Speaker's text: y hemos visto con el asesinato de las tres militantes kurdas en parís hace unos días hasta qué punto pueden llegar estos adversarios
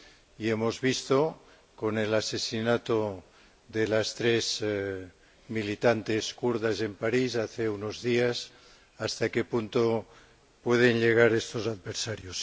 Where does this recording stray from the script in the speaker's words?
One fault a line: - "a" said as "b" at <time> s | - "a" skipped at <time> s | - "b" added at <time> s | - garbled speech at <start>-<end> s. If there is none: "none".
none